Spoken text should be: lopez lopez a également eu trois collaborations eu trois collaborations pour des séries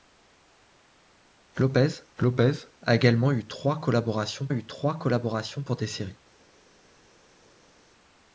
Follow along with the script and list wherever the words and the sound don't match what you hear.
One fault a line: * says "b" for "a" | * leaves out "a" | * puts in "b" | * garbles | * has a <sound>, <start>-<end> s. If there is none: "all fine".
all fine